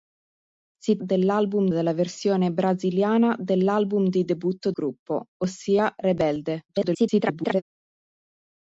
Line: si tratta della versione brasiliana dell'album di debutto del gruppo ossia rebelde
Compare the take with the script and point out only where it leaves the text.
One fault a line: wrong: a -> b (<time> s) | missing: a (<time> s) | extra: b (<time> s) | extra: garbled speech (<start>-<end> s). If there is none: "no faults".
wrong: tratta -> dell'album (1.0 s)
missing: del (4.7 s)
extra: garbled speech (6.7-7.6 s)